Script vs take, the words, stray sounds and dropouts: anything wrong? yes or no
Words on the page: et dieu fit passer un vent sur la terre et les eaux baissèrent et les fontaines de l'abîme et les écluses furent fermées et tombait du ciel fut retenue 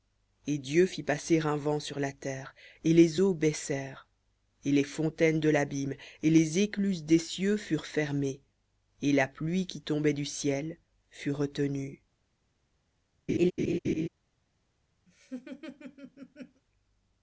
yes